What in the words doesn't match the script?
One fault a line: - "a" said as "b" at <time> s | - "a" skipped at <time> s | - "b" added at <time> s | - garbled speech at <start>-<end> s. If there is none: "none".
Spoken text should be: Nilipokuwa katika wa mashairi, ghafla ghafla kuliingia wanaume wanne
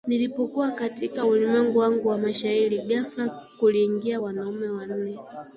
- "ulimwengu wangu" added at 1.2 s
- "ghafla" skipped at 3.4 s